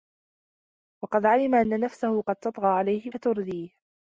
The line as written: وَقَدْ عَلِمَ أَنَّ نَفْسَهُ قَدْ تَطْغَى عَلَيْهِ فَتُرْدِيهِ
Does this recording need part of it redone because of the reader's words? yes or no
no